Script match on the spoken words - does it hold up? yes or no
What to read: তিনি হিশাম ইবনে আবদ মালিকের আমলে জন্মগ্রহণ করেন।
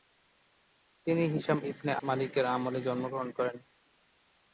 no